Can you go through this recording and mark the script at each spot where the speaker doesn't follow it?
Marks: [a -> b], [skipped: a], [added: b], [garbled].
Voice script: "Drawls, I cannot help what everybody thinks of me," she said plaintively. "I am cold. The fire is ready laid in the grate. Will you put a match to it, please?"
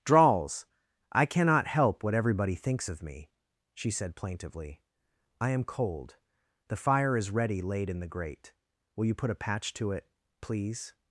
"Drawls, I cannot help what everybody thinks of me," she said plaintively. "I am cold. The fire is ready laid in the grate. Will you put a [match -> patch] to it, please?"